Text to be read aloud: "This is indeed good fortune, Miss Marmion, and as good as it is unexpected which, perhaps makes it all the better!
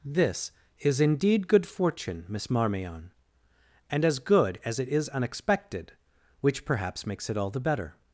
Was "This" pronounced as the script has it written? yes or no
yes